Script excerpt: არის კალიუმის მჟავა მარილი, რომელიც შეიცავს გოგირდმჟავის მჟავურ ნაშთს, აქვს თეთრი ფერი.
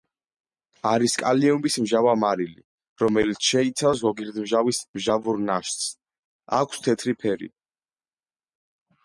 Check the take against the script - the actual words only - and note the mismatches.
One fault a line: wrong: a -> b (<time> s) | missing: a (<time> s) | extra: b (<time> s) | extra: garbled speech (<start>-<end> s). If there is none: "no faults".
no faults